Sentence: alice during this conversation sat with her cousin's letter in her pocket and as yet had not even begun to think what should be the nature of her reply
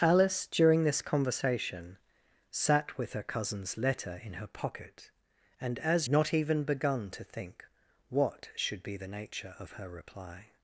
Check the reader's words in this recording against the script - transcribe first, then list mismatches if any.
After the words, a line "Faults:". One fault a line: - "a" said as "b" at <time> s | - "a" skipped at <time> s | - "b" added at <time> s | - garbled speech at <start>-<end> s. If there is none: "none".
alice during this conversation sat with her cousin's letter in her pocket and as not even begun to think what should be the nature of her reply
Faults:
- "yet had" skipped at 6.1 s